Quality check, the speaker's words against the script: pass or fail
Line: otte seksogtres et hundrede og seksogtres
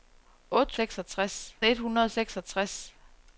pass